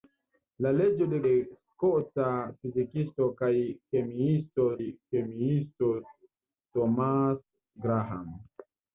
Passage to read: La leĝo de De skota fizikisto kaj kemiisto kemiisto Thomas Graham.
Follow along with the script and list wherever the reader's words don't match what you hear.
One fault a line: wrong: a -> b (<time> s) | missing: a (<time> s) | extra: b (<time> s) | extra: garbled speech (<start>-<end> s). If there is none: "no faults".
no faults